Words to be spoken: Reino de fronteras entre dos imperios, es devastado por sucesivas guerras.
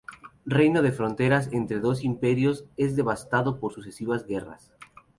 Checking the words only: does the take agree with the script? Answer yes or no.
yes